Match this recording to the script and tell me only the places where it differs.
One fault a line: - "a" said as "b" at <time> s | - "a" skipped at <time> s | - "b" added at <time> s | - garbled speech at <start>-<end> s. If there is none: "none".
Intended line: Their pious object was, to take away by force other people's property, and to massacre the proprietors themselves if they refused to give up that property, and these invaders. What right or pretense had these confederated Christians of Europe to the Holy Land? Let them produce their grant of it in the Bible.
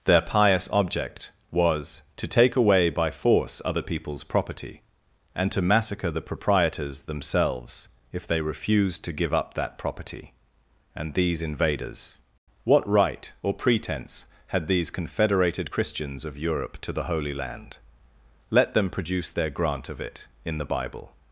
none